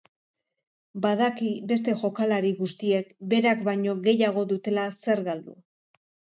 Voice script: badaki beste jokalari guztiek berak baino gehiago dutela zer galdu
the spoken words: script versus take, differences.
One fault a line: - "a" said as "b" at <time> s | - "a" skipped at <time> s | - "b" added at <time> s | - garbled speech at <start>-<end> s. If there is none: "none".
none